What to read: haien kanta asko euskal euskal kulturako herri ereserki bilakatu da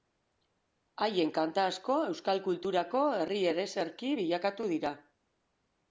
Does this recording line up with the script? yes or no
no